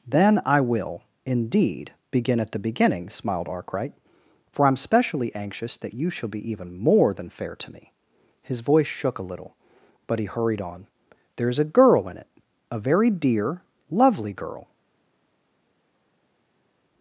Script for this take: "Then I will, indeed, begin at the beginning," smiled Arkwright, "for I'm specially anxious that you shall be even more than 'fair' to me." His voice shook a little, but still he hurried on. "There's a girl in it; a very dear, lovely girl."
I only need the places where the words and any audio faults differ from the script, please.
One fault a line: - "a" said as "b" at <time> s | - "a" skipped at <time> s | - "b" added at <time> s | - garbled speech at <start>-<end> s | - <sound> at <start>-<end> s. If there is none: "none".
- "still" skipped at 10.2 s